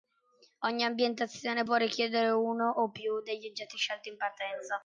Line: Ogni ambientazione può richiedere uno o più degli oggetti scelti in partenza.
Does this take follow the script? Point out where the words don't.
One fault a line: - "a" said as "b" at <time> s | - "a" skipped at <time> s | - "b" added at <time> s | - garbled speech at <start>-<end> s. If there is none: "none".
none